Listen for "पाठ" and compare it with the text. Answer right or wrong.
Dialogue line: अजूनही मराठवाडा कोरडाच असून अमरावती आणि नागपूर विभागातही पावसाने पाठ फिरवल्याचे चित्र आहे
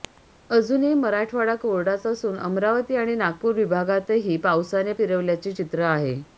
wrong